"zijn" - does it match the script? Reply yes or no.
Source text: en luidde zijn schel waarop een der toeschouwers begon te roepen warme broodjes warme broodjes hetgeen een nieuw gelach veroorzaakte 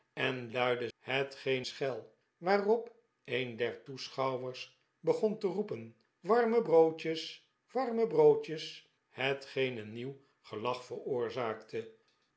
no